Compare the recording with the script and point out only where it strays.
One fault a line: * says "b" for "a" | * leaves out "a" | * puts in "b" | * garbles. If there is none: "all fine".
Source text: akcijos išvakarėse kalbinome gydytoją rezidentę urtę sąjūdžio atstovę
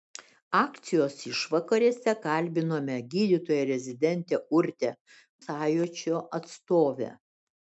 all fine